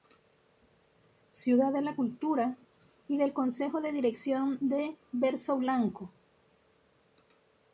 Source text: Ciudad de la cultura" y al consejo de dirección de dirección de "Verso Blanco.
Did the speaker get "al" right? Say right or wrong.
wrong